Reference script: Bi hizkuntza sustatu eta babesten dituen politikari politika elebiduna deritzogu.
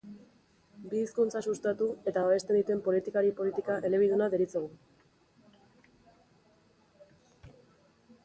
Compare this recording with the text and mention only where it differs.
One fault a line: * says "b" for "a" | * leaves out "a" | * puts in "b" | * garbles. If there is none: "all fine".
all fine